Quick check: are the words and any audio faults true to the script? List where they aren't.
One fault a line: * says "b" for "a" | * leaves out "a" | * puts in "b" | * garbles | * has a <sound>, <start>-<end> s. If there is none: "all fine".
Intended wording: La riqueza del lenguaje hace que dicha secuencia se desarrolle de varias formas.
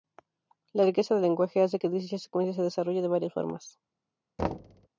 * has a thud, 4.4-4.9 s